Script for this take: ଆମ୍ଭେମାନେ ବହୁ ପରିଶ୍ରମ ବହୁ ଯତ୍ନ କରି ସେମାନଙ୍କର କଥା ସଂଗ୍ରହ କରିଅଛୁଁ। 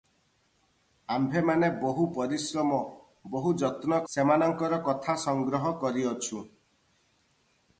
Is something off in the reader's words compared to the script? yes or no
yes